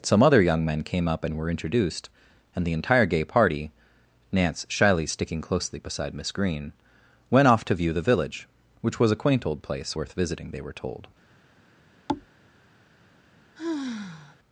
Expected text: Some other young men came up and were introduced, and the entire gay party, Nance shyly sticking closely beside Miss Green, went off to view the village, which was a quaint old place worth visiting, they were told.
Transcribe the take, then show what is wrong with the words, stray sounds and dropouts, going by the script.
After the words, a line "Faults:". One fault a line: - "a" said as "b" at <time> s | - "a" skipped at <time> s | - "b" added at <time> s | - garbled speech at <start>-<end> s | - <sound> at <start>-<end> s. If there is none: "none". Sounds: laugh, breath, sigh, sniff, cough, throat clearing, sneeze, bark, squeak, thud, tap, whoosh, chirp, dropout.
Some other young men came up and were introduced, and the entire gay party, Nance shyly sticking closely beside Miss Green, went off to view the village, which was a quaint old place worth visiting, they were told.
Faults:
- thud at 12.1-12.3 s
- sigh at 13.6-14.4 s